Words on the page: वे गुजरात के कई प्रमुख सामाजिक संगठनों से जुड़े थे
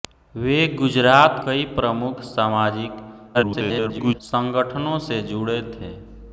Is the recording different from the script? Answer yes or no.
yes